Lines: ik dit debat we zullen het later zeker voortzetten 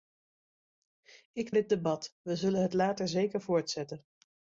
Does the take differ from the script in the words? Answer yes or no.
no